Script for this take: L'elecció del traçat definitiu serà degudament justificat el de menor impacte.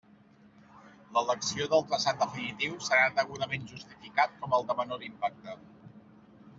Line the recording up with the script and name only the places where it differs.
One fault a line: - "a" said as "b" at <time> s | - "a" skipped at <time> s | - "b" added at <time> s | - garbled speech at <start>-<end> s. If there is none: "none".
- "com" added at 4.4 s